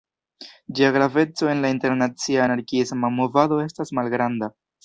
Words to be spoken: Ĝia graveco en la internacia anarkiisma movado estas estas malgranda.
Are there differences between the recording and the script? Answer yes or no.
yes